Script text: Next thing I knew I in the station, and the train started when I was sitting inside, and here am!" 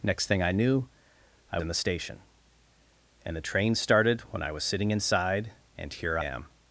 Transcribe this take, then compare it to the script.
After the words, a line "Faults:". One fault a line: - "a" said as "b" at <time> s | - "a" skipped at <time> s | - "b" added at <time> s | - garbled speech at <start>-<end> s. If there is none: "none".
Next thing I knew I in the station, and the train started when I was sitting inside, and here am!"
Faults:
none